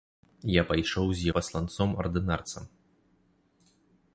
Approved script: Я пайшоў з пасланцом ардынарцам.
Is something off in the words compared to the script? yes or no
no